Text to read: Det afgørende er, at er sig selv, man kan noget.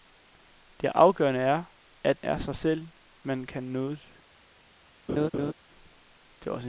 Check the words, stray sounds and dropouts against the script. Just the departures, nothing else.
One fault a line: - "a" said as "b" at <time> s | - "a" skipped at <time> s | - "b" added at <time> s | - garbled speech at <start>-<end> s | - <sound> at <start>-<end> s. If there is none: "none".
- laugh at 5.1-5.5 s